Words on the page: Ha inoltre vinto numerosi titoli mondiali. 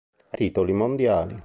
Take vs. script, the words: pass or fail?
fail